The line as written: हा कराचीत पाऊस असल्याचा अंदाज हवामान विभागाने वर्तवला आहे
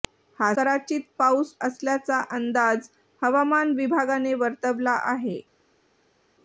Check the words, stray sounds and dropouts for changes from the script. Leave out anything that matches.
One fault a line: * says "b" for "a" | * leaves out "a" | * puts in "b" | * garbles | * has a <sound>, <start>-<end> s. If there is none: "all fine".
all fine